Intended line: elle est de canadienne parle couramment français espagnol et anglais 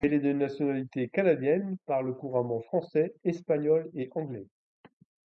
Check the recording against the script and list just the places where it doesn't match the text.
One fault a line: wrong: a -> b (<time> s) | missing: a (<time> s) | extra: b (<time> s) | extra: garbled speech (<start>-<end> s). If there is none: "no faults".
extra: nationalité (0.3 s)